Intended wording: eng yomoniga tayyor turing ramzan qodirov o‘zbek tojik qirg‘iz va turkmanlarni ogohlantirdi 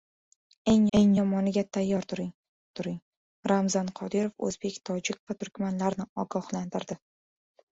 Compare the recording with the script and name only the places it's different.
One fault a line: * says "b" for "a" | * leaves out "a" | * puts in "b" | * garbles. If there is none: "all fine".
* puts in "eng"
* puts in "turing"
* leaves out "qirg‘iz"